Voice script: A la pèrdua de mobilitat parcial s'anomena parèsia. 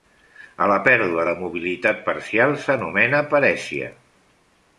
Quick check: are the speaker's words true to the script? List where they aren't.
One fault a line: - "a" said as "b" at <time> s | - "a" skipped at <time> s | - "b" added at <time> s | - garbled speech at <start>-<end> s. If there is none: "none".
none